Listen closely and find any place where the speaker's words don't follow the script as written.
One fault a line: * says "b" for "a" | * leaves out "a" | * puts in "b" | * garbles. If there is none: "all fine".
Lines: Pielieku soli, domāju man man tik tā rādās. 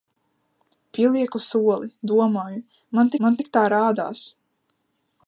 all fine